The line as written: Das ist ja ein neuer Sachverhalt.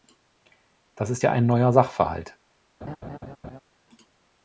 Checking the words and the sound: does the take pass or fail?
fail